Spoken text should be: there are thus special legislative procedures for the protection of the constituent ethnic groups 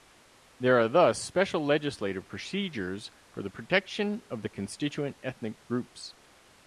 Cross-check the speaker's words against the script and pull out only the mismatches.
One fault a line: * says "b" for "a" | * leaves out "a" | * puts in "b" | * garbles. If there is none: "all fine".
all fine